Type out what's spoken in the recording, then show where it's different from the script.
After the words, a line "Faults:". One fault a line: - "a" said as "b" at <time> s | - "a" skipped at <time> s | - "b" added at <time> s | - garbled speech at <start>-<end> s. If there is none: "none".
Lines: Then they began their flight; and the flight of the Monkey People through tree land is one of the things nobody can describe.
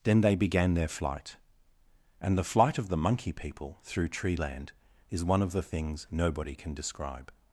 Then they began their flight; and the flight of the Monkey People through tree land is one of the things nobody can describe.
Faults:
none